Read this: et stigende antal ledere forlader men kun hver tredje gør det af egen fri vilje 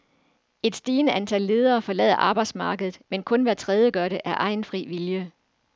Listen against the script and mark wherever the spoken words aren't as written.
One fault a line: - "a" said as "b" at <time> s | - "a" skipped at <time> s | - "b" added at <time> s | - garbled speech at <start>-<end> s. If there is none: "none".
- "arbejdsmarkedet" added at 2.1 s